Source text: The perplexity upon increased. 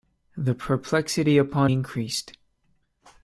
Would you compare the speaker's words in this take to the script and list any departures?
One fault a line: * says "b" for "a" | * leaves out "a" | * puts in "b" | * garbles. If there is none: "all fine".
all fine